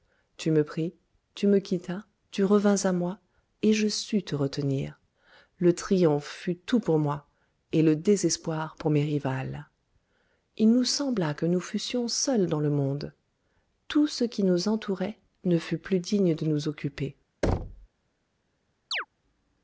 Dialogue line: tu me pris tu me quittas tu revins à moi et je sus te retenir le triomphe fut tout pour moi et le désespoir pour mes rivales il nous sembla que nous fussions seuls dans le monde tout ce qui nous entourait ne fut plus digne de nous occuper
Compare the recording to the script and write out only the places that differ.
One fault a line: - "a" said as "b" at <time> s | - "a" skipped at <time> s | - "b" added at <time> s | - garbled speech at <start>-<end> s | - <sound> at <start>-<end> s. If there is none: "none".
- thud at 17.4-17.9 s
- chirp at 18.9-19.1 s